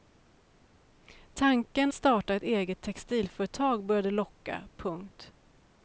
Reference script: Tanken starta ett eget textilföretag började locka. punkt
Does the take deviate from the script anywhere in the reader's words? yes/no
no